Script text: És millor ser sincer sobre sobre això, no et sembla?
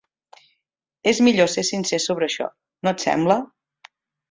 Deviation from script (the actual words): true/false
true